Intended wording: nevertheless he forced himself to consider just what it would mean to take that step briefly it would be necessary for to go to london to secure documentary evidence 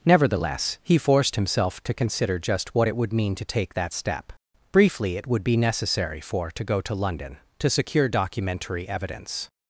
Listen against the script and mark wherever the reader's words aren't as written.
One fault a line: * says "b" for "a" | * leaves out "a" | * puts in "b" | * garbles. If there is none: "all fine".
all fine